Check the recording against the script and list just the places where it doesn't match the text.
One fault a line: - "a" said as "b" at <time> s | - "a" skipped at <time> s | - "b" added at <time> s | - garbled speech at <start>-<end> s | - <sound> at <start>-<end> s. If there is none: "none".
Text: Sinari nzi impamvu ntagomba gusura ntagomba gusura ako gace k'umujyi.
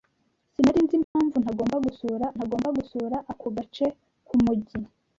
- dropout at 1.0-1.2 s